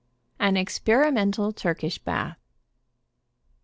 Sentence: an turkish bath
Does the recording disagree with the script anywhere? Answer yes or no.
yes